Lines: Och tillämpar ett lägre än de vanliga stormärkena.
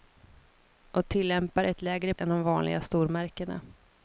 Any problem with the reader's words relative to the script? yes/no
no